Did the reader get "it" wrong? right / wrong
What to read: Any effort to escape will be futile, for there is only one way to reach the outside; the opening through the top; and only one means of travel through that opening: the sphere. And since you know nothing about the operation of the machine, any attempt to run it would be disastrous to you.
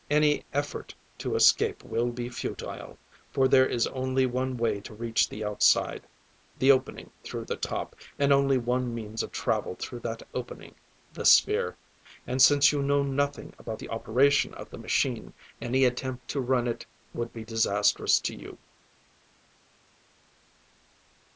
right